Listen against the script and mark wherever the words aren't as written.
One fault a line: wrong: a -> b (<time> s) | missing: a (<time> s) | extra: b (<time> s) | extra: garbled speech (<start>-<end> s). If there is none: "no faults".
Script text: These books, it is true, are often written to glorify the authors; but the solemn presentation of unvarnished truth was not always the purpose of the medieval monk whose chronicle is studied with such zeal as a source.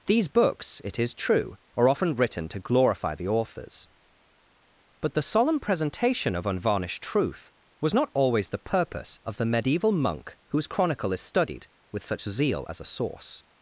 no faults